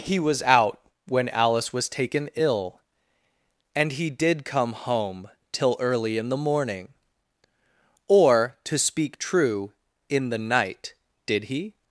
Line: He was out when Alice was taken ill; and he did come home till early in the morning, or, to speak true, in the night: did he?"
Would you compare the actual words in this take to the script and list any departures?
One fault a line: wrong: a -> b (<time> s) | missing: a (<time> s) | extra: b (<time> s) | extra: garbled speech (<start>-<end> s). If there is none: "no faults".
no faults